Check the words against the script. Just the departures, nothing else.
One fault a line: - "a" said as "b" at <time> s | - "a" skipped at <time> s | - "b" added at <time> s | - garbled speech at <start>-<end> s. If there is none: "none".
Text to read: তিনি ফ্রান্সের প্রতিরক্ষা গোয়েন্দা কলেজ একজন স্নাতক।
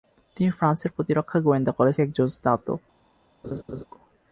none